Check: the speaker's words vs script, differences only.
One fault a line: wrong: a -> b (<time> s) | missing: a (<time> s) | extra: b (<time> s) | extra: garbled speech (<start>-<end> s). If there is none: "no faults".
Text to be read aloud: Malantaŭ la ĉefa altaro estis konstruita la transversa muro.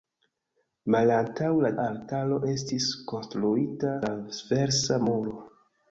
missing: ĉefa (1.7 s)
missing: la (4.0 s)